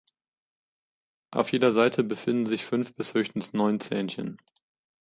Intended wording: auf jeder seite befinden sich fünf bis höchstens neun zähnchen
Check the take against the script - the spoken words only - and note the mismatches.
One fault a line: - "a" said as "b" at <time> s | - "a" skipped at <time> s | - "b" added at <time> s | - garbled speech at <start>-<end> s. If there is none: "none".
none